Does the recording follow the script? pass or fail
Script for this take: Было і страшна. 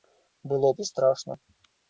pass